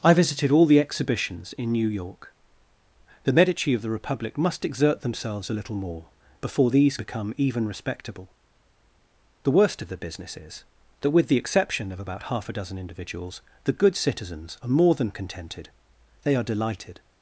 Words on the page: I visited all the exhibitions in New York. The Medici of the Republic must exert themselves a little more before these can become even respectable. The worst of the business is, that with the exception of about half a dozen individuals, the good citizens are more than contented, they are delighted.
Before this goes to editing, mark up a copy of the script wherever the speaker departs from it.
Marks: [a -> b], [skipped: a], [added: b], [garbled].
I visited all the exhibitions in New York. The Medici of the Republic must exert themselves a little more before these [skipped: can] become even respectable. The worst of the business is, that with the exception of about half a dozen individuals, the good citizens are more than contented, they are delighted.